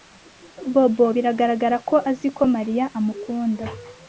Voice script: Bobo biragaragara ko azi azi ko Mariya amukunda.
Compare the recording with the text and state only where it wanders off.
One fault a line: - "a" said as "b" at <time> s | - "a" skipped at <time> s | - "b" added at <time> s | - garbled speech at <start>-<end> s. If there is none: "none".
- "azi" skipped at 2.3 s